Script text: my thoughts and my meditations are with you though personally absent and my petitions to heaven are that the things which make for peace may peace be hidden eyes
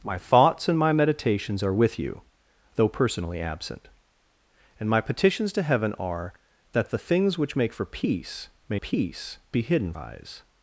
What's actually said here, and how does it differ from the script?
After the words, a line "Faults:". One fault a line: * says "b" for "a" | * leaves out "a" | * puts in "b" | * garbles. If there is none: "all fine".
my thoughts and my meditations are with you though personally absent and my petitions to heaven are that the things which make for peace may peace be hidden eyes
Faults:
all fine